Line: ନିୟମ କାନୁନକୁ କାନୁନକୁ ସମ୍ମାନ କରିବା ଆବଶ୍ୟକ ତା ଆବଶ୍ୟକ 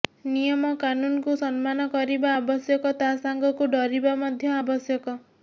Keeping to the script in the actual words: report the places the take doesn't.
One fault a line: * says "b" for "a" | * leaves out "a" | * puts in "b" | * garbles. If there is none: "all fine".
* leaves out "କାନୁନକୁ"
* puts in "ସାଙ୍ଗକୁ ଡରିବା ମଧ୍ୟ"